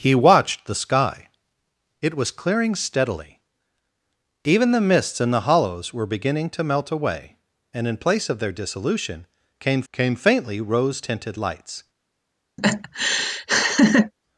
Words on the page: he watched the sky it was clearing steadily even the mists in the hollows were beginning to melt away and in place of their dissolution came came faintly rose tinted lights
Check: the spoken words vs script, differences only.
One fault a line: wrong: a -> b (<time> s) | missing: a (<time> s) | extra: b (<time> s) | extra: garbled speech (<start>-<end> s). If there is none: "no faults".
no faults